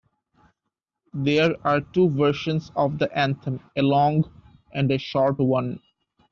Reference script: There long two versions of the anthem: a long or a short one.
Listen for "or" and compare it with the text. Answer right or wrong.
wrong